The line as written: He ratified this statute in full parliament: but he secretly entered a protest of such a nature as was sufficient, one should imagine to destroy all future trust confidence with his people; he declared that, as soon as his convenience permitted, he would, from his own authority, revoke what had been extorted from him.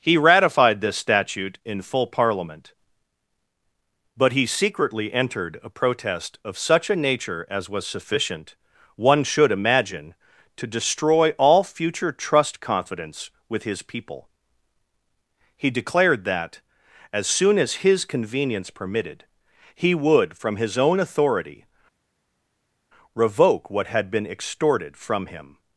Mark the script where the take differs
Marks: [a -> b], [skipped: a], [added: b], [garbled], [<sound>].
He ratified this statute in full parliament: but he secretly entered a protest of such a nature as was sufficient, one should imagine to destroy all future trust confidence with his people; he declared that, as soon as his convenience permitted, he would, from his own authority, revoke what had been extorted from him.